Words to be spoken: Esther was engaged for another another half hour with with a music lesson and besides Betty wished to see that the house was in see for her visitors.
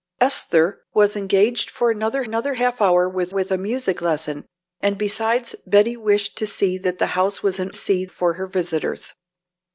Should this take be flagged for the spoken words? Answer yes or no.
no